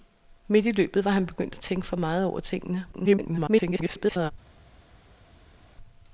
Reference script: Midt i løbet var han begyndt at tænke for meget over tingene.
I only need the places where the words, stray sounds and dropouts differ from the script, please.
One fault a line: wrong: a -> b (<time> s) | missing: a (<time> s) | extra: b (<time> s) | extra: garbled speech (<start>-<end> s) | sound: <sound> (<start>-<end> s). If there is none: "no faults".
extra: garbled speech (2.9-4.3 s)